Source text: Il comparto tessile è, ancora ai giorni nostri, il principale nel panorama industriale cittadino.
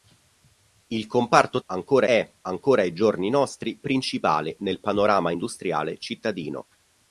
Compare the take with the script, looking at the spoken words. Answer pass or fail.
fail